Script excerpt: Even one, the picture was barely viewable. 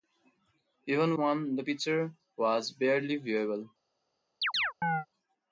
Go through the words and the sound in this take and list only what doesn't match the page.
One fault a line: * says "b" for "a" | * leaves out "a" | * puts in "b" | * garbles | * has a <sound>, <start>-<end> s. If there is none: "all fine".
* has a chirp, 4.4-5.1 s